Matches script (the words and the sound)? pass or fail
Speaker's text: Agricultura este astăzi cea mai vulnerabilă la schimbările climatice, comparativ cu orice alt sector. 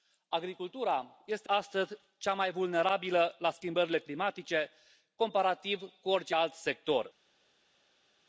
pass